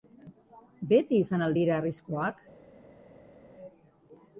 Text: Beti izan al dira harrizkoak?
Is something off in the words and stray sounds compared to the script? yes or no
no